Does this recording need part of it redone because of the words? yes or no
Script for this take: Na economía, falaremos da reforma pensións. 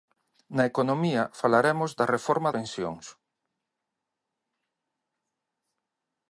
no